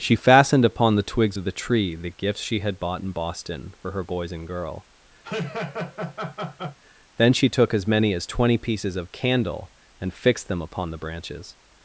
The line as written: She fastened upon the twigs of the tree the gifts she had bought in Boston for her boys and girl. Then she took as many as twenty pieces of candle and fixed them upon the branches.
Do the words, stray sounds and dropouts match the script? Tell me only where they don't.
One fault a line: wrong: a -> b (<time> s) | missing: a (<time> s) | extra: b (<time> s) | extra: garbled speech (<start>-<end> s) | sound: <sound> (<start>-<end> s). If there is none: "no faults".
sound: laugh (5.2-6.8 s)